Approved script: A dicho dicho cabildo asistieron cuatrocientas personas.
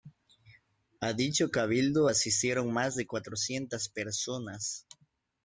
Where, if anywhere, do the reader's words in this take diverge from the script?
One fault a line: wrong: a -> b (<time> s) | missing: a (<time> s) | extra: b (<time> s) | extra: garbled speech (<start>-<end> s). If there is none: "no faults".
missing: dicho (1.5 s)
extra: más de (2.7 s)